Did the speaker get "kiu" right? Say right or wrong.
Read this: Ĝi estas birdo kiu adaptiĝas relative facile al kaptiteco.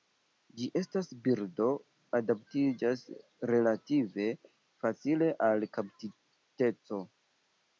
wrong